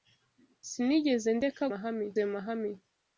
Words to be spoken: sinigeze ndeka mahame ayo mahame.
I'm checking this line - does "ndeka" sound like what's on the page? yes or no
yes